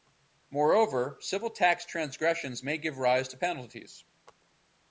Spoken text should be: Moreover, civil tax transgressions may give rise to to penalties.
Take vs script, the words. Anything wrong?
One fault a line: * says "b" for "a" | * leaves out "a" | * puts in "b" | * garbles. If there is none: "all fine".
* leaves out "to"